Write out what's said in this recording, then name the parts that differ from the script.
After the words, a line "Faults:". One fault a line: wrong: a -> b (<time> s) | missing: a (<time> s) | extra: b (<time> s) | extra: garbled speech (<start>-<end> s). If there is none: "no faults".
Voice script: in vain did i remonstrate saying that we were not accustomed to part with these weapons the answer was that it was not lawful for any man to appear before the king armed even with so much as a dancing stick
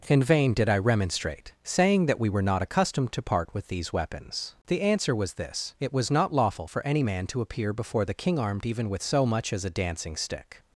in vain did i remonstrate saying that we were not accustomed to part with these weapons the answer was this it was not lawful for any man to appear before the king armed even with so much as a dancing stick
Faults:
wrong: that -> this (5.3 s)